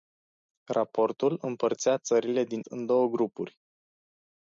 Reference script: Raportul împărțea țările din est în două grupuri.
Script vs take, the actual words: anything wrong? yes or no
yes